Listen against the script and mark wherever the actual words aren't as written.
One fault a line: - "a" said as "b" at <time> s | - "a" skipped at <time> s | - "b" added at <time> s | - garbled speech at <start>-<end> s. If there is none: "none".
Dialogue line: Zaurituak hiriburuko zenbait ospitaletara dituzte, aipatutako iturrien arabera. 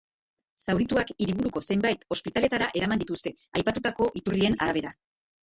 - "eraman" added at 2.8 s